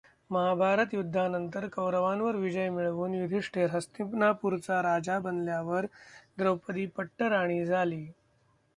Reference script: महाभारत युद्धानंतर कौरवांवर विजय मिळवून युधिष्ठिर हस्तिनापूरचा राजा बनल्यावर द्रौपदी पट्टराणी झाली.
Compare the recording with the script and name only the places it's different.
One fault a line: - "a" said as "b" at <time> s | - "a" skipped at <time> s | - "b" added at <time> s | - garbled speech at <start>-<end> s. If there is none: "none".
none